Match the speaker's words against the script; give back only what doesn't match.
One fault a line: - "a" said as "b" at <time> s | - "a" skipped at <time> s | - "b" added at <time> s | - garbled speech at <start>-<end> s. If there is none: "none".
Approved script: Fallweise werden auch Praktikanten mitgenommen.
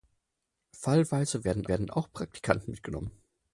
- "werden" added at 1.7 s